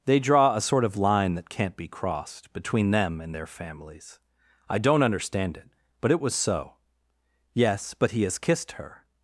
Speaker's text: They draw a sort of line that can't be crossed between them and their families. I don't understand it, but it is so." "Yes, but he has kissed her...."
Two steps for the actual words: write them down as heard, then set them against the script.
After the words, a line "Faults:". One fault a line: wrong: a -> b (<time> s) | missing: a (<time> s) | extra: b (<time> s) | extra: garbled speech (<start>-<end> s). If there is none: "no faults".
They draw a sort of line that can't be crossed between them and their families. I don't understand it, but it was so." "Yes, but he has kissed her...."
Faults:
wrong: is -> was (6.2 s)